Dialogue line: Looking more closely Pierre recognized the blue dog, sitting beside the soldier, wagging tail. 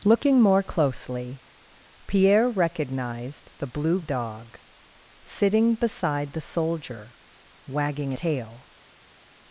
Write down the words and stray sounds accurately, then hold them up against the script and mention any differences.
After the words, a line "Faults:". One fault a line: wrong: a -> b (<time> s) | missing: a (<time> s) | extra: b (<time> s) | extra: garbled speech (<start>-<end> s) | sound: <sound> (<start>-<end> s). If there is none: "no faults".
Looking more closely Pierre recognized the blue dog, sitting beside the soldier, wagging tail.
Faults:
no faults